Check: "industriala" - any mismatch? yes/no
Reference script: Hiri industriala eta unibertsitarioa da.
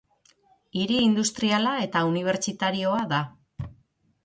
no